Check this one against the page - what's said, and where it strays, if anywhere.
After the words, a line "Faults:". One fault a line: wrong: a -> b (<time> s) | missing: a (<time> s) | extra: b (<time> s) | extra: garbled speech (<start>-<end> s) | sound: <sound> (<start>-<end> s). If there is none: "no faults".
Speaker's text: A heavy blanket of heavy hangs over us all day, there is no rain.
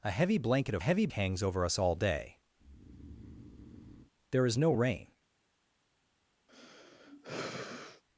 A heavy blanket of heavy hangs over us all day, there is no rain.
Faults:
sound: breath (2.6-4.1 s)
sound: sigh (6.5-8.0 s)